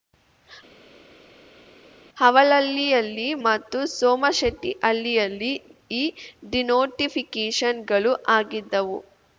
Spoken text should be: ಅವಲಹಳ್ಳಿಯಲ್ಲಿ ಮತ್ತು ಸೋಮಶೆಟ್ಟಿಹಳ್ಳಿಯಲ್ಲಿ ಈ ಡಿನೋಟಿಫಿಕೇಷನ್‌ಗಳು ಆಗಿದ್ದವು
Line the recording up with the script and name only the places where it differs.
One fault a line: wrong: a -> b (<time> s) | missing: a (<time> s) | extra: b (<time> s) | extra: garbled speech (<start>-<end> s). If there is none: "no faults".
no faults